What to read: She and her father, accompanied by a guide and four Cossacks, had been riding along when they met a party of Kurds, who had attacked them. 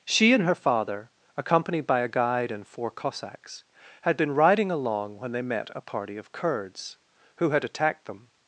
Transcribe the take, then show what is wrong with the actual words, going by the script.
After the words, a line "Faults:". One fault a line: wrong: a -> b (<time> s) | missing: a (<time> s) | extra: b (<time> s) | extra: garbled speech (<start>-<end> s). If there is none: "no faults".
She and her father, accompanied by a guide and four Cossacks, had been riding along when they met a party of Kurds, who had attacked them.
Faults:
no faults